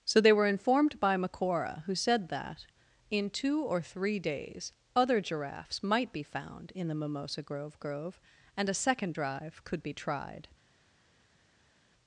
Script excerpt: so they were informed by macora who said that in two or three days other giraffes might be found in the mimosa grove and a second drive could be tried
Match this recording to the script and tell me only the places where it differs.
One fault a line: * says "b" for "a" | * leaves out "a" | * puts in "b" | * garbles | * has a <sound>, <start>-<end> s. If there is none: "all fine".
* puts in "grove"